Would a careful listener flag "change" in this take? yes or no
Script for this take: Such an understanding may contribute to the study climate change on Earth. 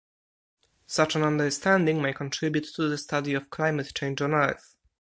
no